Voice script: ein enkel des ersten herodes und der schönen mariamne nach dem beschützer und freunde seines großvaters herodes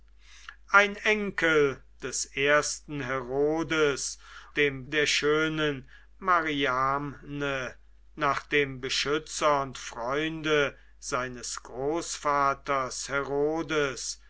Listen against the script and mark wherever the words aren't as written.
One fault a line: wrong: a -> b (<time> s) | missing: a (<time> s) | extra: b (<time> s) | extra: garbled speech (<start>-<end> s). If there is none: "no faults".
wrong: und -> dem (4.5 s)